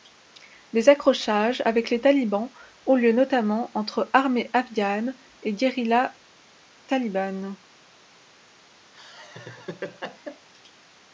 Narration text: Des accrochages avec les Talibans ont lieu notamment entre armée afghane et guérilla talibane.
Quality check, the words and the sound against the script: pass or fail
fail